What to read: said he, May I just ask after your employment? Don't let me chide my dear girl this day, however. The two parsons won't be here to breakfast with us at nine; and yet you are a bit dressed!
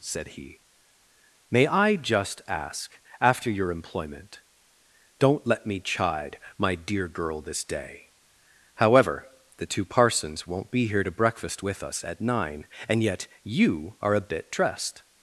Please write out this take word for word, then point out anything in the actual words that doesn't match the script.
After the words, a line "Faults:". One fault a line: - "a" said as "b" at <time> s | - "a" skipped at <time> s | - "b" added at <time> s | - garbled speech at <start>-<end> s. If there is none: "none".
said he, May I just ask after your employment? Don't let me chide my dear girl this day, however. The two parsons won't be here to breakfast with us at nine; and yet you are a bit dressed!
Faults:
none